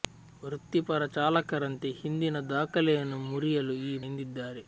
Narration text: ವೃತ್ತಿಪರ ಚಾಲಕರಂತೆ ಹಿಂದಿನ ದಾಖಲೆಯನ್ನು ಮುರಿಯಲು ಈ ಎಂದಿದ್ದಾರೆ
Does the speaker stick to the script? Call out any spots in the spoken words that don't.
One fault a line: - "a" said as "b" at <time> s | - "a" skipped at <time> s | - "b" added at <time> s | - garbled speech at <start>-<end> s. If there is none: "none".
none